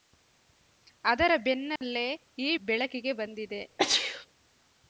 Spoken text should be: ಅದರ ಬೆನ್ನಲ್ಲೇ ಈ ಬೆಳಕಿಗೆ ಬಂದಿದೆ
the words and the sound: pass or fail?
fail